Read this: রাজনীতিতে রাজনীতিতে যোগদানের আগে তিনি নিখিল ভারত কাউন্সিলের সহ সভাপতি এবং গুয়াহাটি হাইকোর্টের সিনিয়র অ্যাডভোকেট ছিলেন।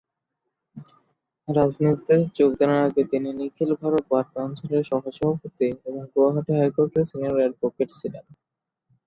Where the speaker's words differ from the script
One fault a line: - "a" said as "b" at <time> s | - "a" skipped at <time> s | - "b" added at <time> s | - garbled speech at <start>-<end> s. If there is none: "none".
- "রাজনীতিতে" skipped at 2.1 s
- "বার" added at 4.1 s